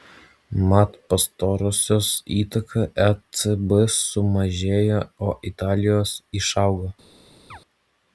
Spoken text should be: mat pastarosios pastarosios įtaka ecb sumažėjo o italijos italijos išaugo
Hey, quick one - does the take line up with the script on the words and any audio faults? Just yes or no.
no